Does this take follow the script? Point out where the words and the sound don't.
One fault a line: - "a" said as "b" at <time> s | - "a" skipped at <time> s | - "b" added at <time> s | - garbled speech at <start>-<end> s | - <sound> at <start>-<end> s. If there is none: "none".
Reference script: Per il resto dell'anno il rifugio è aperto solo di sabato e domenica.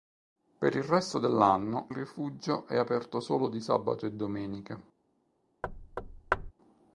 - "il" skipped at 1.9 s
- thud at 5.6-6.5 s